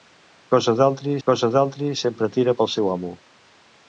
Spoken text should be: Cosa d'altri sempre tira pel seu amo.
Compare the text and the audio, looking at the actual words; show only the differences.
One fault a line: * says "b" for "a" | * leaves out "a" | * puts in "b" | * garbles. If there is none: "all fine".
* puts in "cosa d'altri"